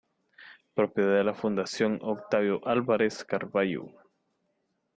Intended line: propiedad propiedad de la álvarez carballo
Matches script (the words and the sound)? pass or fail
fail